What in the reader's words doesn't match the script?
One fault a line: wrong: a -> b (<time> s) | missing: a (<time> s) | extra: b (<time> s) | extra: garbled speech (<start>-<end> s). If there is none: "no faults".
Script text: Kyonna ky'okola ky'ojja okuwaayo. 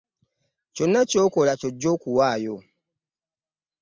no faults